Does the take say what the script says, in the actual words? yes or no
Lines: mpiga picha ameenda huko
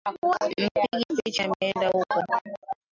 yes